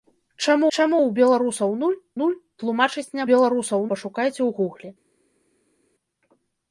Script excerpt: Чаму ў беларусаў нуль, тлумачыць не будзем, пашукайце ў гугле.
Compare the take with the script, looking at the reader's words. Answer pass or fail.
fail